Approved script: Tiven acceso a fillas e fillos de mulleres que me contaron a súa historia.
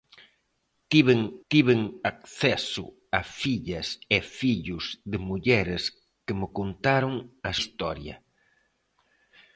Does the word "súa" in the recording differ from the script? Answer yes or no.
yes